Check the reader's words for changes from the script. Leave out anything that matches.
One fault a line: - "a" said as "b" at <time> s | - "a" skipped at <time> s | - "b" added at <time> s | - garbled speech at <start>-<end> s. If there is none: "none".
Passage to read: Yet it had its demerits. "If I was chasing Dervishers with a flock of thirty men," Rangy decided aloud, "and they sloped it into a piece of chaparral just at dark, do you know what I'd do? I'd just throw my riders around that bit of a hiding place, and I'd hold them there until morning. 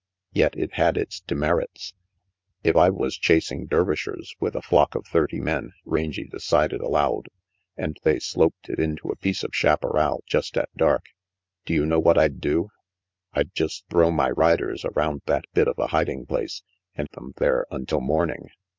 - "I'd hold" skipped at 17.1 s